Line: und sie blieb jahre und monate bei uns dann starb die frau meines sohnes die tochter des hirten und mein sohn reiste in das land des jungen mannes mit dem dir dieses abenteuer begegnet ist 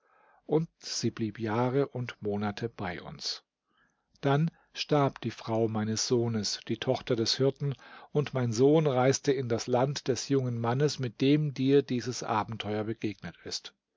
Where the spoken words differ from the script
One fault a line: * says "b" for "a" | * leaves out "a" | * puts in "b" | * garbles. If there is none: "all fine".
all fine